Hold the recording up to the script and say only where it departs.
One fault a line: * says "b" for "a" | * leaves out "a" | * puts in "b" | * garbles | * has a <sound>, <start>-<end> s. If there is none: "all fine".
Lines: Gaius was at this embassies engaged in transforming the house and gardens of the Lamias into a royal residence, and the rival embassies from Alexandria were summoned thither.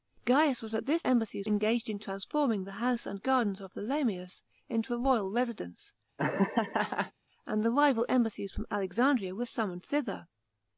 * has a laugh, 6.2-7.1 s